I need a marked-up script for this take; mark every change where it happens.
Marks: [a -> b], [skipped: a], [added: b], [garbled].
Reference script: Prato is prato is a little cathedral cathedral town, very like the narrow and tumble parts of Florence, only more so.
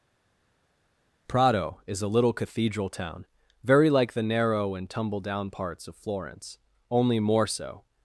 Prato is [skipped: prato is] a little cathedral [skipped: cathedral] town, very like the narrow and tumble [added: down] parts of Florence, only more so.